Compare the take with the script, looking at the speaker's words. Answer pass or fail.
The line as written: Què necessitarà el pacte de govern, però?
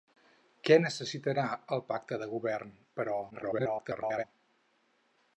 fail